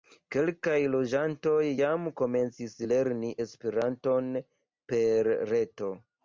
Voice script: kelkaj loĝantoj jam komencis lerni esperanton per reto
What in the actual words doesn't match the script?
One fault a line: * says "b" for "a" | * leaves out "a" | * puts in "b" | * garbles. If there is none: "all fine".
all fine